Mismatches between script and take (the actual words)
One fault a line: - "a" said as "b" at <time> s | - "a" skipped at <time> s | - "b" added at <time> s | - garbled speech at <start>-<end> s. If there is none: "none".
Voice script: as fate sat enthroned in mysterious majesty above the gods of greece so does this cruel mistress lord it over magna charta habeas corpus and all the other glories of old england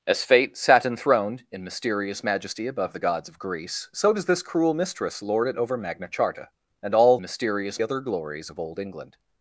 - "habeas corpus" skipped at 6.5 s
- "the" said as "mysterious" at 7.2 s